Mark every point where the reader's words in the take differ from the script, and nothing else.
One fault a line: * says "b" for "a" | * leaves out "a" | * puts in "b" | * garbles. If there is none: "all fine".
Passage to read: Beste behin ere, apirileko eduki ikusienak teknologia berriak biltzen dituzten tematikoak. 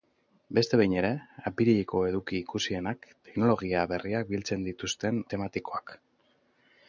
all fine